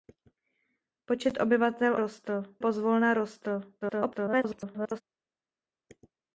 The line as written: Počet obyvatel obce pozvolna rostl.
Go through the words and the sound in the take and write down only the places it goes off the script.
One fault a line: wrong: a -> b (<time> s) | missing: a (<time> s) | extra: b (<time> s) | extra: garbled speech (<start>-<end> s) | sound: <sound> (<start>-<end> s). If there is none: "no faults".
wrong: obce -> rostl (2.0 s)
extra: garbled speech (3.8-5.0 s)